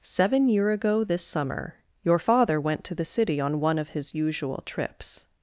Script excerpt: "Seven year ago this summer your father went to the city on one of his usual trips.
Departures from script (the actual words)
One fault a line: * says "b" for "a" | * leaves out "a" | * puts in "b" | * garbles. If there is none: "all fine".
all fine